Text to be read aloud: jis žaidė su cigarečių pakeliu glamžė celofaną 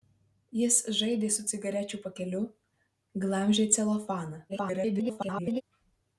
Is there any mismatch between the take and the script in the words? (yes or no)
yes